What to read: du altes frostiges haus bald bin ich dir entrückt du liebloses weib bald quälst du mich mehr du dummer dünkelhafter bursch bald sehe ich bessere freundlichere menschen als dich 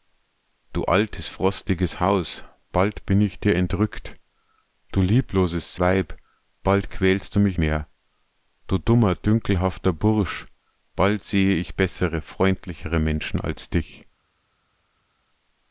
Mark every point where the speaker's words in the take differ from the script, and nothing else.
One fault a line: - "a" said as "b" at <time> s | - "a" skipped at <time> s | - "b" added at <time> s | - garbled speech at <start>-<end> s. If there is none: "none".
none